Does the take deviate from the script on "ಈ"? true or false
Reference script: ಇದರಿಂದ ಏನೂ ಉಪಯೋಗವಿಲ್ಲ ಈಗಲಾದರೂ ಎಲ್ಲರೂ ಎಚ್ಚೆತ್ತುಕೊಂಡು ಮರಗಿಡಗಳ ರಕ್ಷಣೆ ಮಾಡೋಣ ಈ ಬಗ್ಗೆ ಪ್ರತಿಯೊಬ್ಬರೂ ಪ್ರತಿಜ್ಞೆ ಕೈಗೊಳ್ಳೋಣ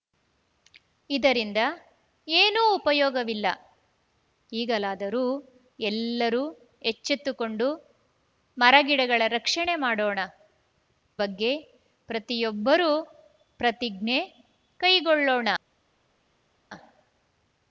true